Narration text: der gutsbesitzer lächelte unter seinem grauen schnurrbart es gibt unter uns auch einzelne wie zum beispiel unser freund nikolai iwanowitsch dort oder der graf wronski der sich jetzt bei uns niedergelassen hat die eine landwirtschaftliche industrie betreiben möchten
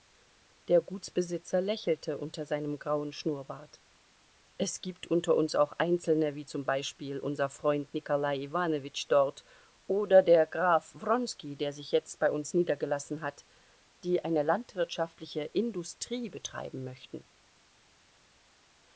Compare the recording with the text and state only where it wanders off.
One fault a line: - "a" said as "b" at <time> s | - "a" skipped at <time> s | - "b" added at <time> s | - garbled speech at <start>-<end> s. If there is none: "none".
none